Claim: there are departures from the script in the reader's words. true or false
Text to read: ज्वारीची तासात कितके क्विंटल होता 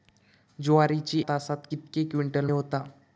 false